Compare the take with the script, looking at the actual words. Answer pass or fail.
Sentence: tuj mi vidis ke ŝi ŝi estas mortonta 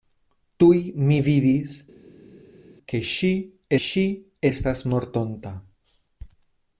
pass